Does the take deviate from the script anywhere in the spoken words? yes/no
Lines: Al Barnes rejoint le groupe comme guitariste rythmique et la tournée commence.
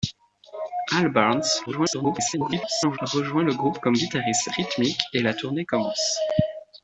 yes